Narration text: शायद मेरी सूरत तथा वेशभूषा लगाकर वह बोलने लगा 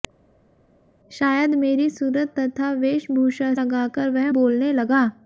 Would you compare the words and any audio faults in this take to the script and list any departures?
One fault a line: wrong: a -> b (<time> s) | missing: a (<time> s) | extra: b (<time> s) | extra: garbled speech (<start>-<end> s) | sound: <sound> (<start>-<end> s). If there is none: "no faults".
no faults